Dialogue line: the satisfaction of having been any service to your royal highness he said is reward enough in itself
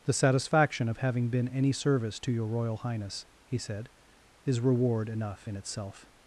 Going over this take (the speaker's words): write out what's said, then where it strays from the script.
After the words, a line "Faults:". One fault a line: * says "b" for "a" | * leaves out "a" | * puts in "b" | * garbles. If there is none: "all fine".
the satisfaction of having been any service to your royal highness he said is reward enough in itself
Faults:
all fine